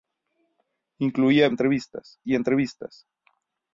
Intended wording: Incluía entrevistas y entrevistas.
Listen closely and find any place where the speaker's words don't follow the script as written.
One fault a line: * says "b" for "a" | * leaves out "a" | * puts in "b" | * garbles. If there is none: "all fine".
all fine